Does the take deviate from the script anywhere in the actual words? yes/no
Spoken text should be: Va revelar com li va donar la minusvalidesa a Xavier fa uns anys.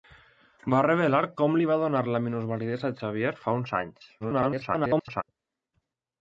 yes